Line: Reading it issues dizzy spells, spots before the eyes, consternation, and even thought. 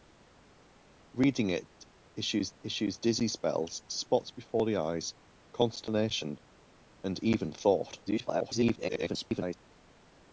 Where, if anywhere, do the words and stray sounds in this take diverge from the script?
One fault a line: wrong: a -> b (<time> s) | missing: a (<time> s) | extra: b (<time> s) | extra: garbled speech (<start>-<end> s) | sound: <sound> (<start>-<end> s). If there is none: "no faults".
extra: issues (2.6 s)
extra: garbled speech (8.1-9.6 s)